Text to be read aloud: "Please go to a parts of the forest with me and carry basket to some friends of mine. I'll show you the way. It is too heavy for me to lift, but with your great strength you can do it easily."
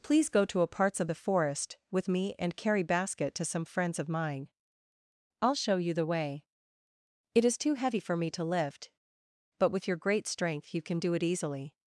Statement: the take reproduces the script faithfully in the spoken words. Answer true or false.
true